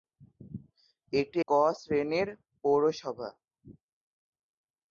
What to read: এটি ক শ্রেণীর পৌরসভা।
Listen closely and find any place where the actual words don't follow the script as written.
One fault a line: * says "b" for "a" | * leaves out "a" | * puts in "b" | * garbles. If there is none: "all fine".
all fine